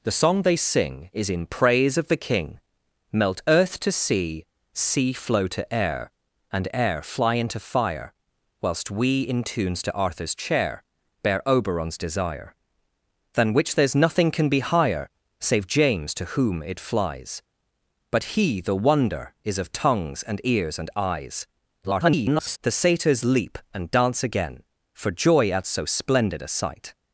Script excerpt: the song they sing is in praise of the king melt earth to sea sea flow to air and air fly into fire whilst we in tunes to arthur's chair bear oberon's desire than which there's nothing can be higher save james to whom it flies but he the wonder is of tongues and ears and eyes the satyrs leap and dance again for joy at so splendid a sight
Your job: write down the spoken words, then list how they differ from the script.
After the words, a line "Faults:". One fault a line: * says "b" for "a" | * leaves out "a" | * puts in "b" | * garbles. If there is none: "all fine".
the song they sing is in praise of the king melt earth to sea sea flow to air and air fly into fire whilst we in tunes to arthur's chair bear oberon's desire than which there's nothing can be higher save james to whom it flies but he the wonder is of tongues and ears and eyes [garbled] the satyrs leap and dance again for joy at so splendid a sight
Faults:
* garbles